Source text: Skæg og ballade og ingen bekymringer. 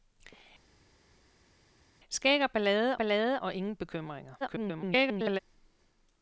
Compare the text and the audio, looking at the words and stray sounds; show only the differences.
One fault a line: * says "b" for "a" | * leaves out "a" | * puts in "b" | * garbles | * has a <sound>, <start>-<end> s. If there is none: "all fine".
* puts in "ballade"
* garbles